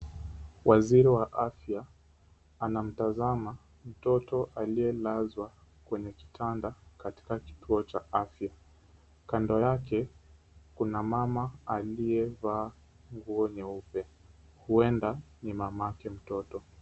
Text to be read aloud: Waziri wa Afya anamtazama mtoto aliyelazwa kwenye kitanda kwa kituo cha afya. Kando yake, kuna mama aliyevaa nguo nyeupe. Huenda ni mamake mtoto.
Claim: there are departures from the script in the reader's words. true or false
true